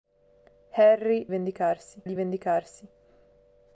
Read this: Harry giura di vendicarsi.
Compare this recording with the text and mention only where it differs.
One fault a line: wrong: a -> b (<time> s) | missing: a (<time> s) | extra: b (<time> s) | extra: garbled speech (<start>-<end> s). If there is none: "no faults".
wrong: giura -> vendicarsi (1.3 s)